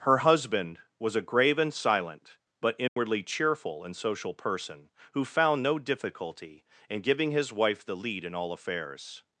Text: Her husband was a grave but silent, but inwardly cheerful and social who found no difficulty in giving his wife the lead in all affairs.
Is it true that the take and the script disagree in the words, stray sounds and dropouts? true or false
true